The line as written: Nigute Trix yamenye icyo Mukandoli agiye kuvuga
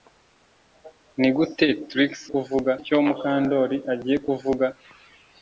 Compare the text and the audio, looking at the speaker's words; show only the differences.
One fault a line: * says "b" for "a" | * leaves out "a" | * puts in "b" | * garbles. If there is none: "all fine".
* says "kuvuga" for "yamenye"